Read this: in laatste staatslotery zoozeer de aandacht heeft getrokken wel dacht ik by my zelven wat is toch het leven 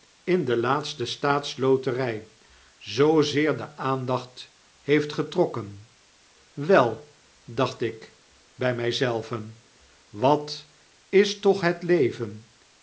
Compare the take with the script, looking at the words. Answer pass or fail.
fail